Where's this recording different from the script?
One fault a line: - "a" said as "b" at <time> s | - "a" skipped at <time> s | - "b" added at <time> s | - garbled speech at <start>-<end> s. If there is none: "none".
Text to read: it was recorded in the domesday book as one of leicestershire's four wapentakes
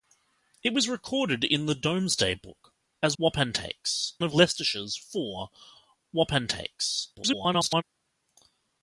- "one" said as "wapentakes" at 3.2 s
- garbled speech at 7.1-7.8 s